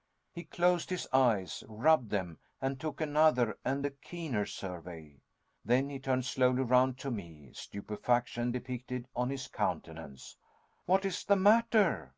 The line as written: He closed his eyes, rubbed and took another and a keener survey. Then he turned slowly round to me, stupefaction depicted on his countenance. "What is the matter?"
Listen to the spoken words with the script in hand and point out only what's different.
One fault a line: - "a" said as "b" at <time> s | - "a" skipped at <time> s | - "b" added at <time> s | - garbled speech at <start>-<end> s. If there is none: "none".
- "them" added at 2.1 s